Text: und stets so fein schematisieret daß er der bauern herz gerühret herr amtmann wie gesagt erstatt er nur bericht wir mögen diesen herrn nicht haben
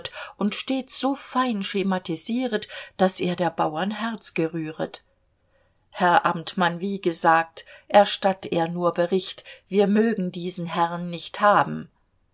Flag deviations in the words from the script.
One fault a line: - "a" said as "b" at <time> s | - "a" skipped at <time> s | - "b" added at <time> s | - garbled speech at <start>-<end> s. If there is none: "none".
none